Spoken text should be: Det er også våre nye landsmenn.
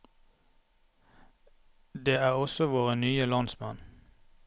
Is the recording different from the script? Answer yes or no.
no